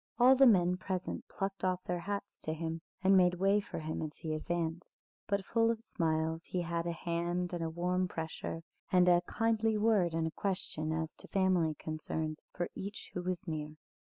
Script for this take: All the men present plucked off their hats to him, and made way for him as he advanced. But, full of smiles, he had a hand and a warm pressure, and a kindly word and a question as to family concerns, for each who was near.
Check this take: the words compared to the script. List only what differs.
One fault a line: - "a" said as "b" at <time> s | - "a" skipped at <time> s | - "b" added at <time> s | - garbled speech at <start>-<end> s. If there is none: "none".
none